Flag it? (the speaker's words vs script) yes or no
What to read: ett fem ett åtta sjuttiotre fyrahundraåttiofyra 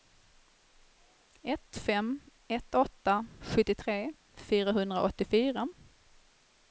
no